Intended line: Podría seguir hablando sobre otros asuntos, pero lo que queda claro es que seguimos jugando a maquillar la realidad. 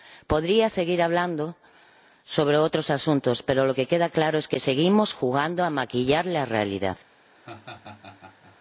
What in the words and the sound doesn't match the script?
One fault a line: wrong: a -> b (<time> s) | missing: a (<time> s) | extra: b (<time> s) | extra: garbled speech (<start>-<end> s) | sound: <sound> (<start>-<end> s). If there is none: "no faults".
sound: laugh (7.3-8.6 s)